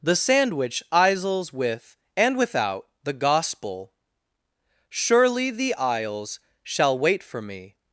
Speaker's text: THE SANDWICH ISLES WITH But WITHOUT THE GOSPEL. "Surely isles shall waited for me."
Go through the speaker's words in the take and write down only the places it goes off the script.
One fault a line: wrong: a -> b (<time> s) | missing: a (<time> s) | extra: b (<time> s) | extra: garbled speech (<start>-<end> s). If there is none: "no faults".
wrong: But -> AND (2.1 s)
extra: the (5.5 s)
wrong: waited -> wait (7.0 s)